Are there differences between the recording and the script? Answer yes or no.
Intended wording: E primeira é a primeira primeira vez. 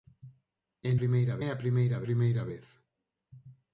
no